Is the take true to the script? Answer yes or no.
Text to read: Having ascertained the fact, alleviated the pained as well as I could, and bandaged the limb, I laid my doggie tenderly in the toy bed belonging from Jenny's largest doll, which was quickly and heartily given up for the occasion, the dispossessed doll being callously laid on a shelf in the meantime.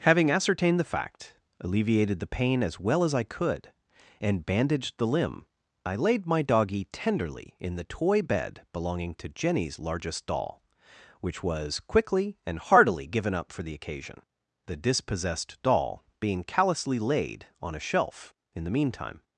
no